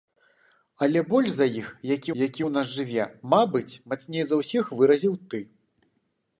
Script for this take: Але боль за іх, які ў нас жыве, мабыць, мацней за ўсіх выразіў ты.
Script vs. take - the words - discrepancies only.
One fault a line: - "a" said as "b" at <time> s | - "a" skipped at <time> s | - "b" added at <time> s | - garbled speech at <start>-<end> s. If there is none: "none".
- "які" added at 2.2 s